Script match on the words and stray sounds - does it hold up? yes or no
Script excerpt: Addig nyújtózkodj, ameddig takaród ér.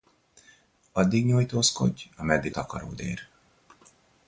yes